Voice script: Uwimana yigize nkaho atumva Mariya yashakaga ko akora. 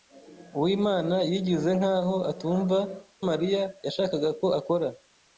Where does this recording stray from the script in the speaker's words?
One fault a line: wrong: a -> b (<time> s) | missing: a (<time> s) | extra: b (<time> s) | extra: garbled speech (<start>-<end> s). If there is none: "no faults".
no faults